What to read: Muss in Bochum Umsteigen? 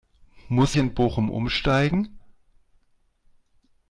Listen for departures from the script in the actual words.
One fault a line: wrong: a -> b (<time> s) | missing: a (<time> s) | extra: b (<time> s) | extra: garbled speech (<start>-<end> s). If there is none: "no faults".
no faults